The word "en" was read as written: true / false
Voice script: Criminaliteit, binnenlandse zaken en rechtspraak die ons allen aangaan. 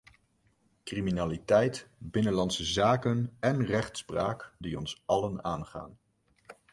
true